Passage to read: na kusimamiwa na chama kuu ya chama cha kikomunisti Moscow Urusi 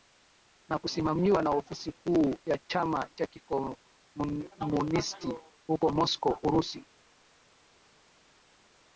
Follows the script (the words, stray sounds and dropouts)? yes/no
no